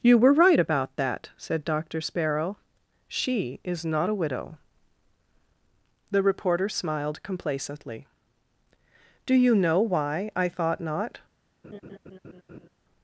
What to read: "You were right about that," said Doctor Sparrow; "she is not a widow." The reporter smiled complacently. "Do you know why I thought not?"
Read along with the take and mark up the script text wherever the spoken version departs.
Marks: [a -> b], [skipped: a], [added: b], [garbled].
"You were right about that," said Doctor Sparrow; "she is not a widow." The reporter smiled complacently. "Do you know why I thought not?"